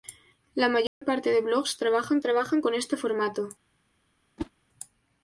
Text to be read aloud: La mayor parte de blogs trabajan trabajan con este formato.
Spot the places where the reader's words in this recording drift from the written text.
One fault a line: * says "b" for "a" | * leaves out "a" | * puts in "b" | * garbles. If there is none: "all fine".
all fine